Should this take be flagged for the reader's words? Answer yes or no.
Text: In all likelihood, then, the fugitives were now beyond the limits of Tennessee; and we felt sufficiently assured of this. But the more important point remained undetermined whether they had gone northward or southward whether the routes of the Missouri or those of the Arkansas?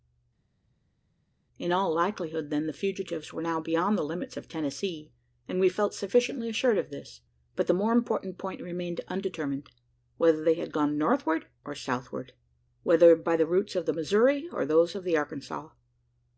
yes